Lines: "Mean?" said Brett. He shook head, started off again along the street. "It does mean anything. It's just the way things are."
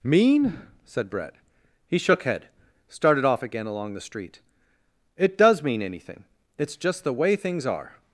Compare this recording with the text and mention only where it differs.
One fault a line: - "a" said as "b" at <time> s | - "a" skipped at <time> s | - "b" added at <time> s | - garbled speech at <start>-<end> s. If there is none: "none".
none